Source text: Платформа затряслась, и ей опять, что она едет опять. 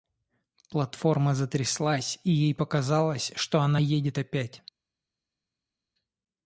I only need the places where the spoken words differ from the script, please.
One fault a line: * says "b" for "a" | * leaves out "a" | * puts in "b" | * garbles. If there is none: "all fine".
* says "показалось" for "опять"